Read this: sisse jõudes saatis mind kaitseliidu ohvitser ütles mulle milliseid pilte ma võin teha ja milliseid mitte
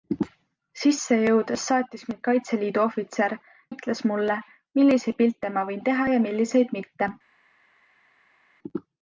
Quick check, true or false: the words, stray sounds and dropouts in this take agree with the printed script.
true